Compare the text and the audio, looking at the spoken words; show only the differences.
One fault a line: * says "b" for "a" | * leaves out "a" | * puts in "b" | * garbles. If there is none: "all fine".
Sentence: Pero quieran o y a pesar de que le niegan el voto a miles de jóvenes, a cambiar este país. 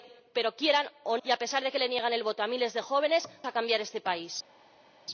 all fine